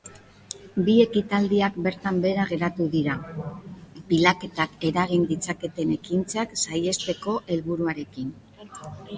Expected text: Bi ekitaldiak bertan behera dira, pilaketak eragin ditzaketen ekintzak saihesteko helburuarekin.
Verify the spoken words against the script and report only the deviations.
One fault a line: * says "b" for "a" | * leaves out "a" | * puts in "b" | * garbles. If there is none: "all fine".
* puts in "geratu"